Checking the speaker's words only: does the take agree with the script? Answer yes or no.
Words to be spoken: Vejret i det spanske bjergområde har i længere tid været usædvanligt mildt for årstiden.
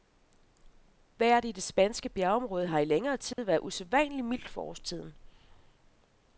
yes